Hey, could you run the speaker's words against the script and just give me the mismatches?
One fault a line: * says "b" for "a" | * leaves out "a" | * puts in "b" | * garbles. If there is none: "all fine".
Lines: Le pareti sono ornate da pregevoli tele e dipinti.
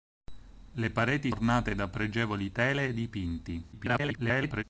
* leaves out "sono"
* garbles